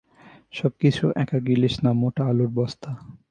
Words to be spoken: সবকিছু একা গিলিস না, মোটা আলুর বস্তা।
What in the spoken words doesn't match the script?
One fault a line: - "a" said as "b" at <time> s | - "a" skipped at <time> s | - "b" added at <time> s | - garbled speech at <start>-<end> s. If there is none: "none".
none